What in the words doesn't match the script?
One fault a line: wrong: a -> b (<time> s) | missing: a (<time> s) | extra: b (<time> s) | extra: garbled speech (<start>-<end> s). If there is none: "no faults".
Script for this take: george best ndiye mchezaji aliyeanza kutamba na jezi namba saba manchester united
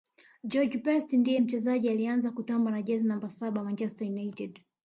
no faults